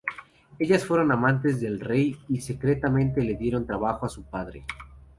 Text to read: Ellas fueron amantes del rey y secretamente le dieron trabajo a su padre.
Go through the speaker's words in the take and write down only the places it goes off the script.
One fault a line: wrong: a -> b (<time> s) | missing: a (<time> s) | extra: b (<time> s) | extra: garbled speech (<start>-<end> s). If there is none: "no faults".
no faults